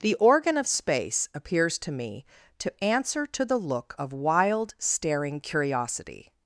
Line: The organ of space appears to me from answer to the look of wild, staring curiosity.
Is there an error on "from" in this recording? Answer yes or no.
yes